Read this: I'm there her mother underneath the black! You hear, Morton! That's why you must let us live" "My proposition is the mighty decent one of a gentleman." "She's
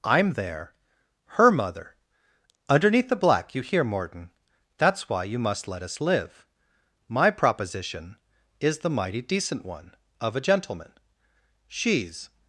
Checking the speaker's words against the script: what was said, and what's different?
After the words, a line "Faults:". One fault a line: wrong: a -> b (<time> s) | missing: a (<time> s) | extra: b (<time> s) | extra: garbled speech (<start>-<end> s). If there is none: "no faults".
I'm there her mother underneath the black! You hear, Morton! That's why you must let us live" "My proposition is the mighty decent one of a gentleman." "She's
Faults:
no faults